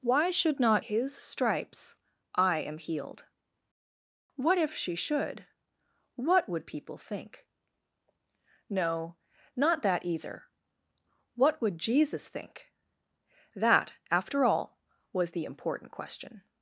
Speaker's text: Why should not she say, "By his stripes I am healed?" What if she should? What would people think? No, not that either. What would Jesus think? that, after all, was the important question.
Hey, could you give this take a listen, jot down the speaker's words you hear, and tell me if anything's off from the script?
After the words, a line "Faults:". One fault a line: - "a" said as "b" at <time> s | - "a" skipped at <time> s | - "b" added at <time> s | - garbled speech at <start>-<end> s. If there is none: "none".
Why should not his stripes I am healed?" What if she should? What would people think? No, not that either. What would Jesus think? that, after all, was the important question.
Faults:
- "she say By" skipped at 0.8 s